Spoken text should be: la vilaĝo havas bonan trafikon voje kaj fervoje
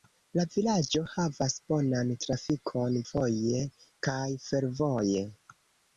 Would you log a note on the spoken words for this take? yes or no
no